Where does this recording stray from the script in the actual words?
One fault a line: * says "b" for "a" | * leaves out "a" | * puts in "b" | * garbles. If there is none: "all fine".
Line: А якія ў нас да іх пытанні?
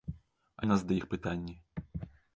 * leaves out "якія"